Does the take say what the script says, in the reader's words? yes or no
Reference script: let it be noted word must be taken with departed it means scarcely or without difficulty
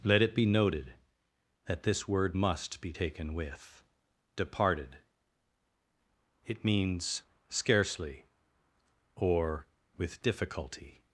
no